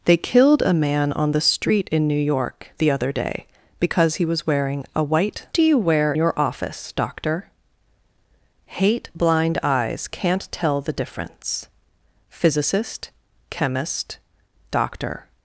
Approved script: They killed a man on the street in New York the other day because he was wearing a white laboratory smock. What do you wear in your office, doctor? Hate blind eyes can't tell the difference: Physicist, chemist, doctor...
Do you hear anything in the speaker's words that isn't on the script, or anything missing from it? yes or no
yes